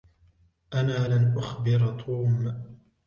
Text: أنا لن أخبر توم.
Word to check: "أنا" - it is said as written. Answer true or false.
true